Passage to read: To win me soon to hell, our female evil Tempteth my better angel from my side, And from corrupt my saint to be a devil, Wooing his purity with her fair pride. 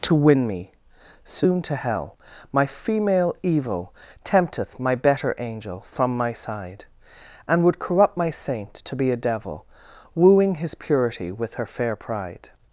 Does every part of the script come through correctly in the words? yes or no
no